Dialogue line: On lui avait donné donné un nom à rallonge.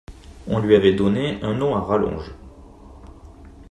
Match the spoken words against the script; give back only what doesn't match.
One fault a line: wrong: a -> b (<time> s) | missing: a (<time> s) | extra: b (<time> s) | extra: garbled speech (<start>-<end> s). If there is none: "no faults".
missing: donné (1.4 s)